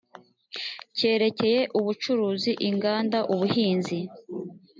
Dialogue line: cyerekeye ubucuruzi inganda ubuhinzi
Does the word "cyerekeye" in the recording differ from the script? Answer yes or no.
no